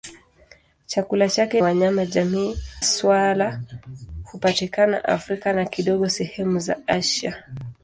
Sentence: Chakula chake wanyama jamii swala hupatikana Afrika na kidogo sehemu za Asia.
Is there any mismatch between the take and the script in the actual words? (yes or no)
no